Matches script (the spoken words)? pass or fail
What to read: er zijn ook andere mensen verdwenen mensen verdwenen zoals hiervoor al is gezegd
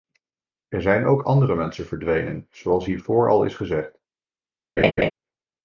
fail